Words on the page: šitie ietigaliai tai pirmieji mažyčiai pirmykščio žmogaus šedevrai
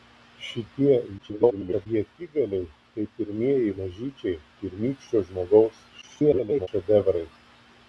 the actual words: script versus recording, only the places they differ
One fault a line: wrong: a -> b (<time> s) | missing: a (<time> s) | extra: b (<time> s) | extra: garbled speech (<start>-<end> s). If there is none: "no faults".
extra: garbled speech (1.2-1.9 s)
extra: garbled speech (6.0-6.7 s)